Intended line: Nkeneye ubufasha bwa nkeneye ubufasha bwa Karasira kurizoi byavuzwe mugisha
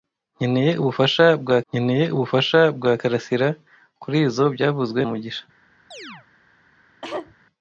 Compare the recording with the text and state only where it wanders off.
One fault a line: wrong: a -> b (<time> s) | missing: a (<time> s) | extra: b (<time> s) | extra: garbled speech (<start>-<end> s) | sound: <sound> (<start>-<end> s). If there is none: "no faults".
sound: chirp (5.9-6.3 s)
sound: cough (7.0-7.3 s)